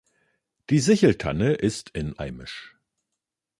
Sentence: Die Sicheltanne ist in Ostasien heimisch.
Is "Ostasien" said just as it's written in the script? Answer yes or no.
no